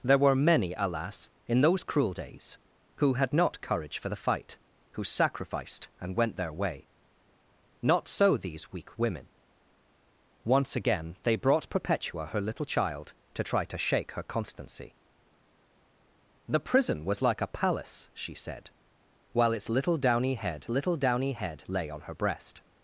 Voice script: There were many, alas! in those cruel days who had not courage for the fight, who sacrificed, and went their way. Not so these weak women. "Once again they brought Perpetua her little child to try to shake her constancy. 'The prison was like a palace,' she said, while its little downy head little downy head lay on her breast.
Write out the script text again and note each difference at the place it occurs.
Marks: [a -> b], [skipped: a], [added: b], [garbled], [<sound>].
There were many, alas! in those cruel days who had not courage for the fight, who sacrificed, and went their way. Not so these weak women. "Once again they brought Perpetua her little child to try to shake her constancy. 'The prison was like a palace,' she said, while its little downy head little downy head lay on her breast.